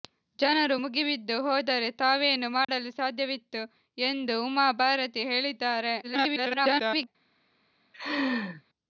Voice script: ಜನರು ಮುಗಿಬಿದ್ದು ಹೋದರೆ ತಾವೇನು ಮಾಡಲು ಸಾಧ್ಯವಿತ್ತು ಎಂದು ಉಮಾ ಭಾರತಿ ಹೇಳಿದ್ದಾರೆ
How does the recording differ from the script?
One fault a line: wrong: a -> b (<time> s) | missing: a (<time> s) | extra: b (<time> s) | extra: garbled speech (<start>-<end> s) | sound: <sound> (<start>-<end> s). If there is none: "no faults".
sound: dropout (2.6-2.7 s)
extra: garbled speech (6.0-7.1 s)
sound: laugh (7.9-8.6 s)